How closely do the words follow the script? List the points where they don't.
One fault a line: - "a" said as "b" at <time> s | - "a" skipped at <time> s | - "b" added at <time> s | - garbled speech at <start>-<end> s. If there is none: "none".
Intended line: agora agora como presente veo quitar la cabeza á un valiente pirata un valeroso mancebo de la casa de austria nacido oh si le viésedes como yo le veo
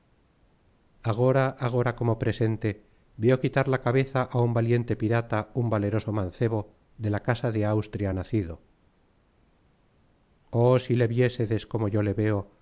none